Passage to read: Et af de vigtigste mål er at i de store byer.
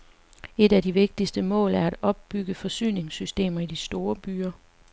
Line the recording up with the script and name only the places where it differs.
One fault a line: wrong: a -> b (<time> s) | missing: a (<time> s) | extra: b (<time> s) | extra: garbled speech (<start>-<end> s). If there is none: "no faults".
extra: opbygge forsyningssystemer (2.0 s)